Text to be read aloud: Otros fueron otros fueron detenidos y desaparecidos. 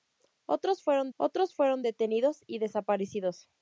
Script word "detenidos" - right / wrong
right